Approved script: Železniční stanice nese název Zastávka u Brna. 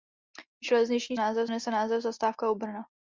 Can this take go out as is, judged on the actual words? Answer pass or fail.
fail